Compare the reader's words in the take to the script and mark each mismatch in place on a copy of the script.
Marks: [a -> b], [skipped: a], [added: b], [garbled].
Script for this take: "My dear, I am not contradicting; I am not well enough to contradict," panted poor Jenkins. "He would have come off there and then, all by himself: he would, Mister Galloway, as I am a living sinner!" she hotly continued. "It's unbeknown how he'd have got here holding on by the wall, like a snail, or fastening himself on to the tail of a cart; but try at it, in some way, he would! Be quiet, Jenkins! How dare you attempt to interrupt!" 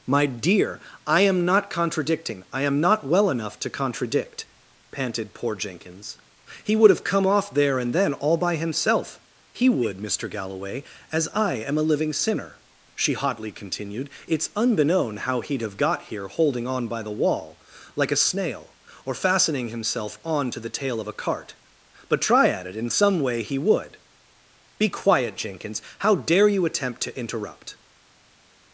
"My dear, I am not contradicting; I am not well enough to contradict," panted poor Jenkins. "He would have come off there and then, all by himself: he would, Mister Galloway, as I am a living sinner!" she hotly continued. "It's unbeknown how he'd have got here holding on by the wall, like a snail, or fastening himself on to the tail of a cart; but try at it, in some way, he would! Be quiet, Jenkins! How dare you attempt to interrupt!"